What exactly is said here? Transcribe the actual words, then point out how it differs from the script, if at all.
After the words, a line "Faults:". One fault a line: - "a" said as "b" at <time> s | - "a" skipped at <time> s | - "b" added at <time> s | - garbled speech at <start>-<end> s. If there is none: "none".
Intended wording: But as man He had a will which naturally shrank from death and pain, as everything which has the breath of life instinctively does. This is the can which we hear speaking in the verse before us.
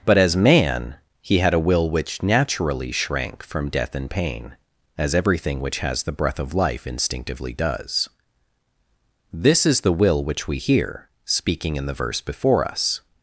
But as man He had a will which naturally shrank from death and pain, as everything which has the breath of life instinctively does. This is the will which we hear speaking in the verse before us.
Faults:
- "can" said as "will" at 9.9 s